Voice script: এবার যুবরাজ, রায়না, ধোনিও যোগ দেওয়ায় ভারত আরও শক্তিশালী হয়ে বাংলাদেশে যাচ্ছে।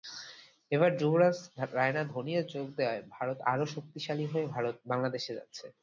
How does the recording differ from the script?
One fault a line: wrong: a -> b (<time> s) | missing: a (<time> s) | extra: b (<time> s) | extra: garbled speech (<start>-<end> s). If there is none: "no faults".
no faults